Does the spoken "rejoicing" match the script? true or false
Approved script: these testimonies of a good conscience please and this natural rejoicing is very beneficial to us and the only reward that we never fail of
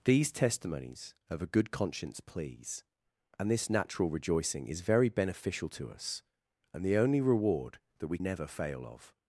true